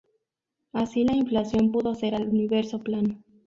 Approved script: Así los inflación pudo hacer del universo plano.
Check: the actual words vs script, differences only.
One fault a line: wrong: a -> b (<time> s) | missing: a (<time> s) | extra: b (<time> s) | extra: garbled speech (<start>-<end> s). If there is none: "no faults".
wrong: los -> la (1.0 s)
wrong: del -> al (2.2 s)